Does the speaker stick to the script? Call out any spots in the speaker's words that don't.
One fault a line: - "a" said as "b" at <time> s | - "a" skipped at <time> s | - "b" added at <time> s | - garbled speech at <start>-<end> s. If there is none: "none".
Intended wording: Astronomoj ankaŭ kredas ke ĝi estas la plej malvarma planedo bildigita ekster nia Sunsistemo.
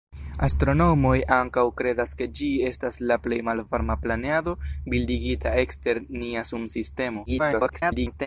- garbled speech at 7.3-8.3 s